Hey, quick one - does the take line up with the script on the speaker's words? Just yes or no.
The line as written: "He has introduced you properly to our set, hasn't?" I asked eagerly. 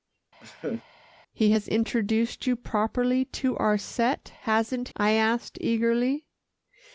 yes